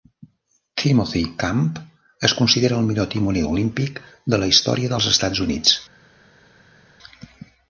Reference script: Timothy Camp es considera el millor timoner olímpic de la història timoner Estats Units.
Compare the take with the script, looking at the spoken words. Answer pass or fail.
fail